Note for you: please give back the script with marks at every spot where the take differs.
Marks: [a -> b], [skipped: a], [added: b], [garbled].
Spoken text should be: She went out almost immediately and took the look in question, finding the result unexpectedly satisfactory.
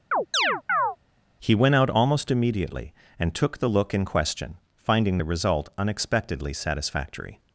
[She -> He] went out almost immediately and took the look in question, finding the result unexpectedly satisfactory.